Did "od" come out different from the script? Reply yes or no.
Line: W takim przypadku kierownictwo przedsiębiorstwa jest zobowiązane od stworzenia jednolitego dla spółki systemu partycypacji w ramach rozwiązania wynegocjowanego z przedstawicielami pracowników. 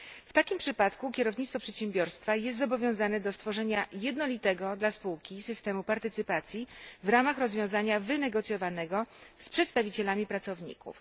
yes